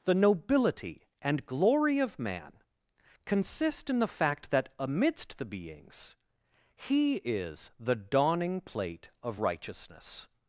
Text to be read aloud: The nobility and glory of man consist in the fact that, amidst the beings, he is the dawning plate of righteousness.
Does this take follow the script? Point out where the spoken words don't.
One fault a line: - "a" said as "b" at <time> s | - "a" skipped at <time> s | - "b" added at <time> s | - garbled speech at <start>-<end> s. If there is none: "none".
none